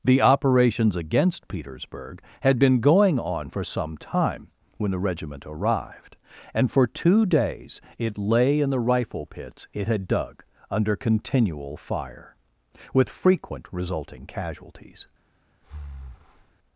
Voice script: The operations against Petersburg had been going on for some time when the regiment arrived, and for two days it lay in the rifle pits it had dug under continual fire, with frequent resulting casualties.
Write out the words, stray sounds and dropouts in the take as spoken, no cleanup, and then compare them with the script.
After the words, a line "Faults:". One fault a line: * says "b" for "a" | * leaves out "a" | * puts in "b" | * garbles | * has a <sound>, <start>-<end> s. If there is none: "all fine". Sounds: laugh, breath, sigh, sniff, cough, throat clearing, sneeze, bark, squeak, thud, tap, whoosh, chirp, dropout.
The operations against Petersburg had been going on for some time when the regiment arrived, and for two days it lay in the rifle pits it had dug under continual fire, with frequent resulting casualties.
Faults:
* has a breath, 15.6-16.6 s